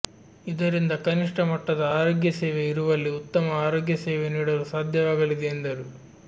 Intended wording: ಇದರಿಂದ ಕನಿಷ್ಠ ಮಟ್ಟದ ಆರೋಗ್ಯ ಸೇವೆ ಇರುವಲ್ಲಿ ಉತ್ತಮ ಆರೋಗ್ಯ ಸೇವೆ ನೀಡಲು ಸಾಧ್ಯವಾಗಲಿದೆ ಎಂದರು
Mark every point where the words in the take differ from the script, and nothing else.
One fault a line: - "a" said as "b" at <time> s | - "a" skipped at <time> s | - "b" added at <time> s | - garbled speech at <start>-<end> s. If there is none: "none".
none